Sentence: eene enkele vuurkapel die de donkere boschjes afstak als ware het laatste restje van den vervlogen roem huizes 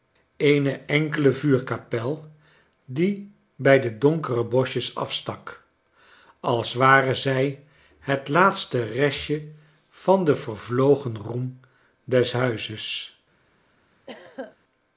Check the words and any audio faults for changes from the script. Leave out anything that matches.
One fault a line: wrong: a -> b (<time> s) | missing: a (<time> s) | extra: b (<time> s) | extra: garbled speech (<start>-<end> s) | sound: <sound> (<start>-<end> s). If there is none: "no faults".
extra: bij (3.5 s)
extra: zij (7.2 s)
extra: des (12.0 s)
sound: throat clearing (14.1-14.6 s)